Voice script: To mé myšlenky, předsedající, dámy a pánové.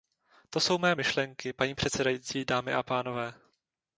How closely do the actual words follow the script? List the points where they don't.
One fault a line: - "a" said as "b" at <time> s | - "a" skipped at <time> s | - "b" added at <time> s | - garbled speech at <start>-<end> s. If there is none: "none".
- "jsou" added at 0.6 s
- "paní" added at 1.5 s